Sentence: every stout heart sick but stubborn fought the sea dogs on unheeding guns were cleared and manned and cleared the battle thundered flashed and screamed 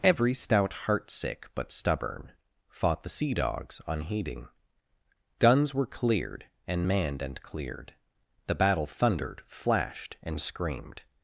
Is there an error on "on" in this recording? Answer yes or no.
yes